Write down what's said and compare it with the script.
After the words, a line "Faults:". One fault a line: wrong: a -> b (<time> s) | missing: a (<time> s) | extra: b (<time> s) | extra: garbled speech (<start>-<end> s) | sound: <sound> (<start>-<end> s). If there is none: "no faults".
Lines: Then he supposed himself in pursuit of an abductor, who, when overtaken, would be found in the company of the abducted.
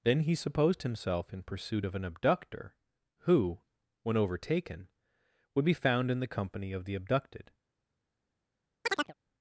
Then he supposed himself in pursuit of an abductor, who, when overtaken, would be found in the company of the abducted.
Faults:
sound: chirp (8.8-9.1 s)